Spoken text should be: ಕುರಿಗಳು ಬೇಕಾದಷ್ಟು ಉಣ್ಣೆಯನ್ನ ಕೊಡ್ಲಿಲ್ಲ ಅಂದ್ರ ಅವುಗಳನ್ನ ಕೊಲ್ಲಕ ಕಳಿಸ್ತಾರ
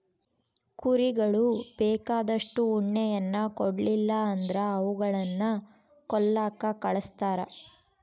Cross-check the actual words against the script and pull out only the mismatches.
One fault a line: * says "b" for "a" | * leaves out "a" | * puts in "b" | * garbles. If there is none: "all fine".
all fine